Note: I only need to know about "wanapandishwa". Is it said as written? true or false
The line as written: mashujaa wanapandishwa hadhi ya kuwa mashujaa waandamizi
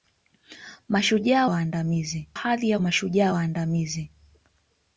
false